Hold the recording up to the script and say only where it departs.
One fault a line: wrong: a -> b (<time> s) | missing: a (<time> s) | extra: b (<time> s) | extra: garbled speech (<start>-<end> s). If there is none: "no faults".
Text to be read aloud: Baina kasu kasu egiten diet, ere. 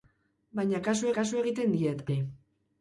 no faults